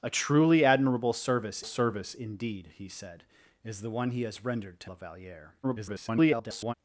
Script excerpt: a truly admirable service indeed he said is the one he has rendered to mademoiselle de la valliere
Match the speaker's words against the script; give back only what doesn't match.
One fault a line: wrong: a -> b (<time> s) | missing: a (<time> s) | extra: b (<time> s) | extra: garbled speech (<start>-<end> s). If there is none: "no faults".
extra: service (1.6 s)
missing: mademoiselle de (4.9 s)
extra: garbled speech (5.6-6.7 s)